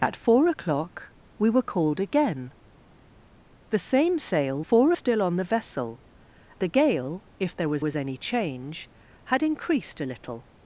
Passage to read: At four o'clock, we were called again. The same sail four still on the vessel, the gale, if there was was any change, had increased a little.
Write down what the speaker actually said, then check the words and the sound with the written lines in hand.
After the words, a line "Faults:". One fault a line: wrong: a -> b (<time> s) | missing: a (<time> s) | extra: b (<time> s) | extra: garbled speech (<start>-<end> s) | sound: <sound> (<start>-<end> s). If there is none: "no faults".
At four o'clock, we were called again. The same sail four still on the vessel, the gale, if there was was any change, had increased a little.
Faults:
no faults